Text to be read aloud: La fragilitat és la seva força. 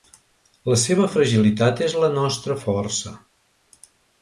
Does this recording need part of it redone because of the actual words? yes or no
yes